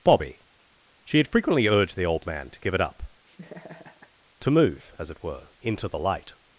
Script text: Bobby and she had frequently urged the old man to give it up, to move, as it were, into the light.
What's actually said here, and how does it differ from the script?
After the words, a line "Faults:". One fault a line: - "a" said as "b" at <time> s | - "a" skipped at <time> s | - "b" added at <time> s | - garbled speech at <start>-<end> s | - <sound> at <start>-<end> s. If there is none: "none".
Bobby she had frequently urged the old man to give it up, to move, as it were, into the light.
Faults:
- "and" skipped at 0.4 s
- laugh at 3.3-4.1 s